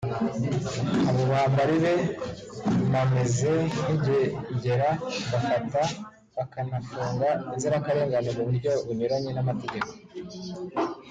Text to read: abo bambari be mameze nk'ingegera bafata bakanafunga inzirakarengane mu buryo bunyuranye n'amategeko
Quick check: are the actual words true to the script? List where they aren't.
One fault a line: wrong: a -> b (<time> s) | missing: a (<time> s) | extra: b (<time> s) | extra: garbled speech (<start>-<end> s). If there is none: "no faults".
no faults